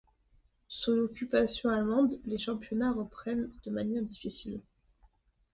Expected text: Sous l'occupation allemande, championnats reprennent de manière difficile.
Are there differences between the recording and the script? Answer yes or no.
yes